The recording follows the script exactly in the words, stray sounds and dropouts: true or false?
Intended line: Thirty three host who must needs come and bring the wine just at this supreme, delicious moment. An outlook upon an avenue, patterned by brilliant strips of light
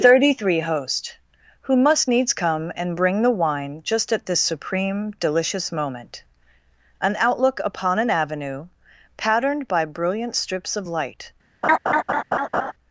false